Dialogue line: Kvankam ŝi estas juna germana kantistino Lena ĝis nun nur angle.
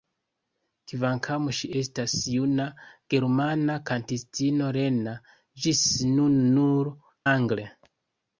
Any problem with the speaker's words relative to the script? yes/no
no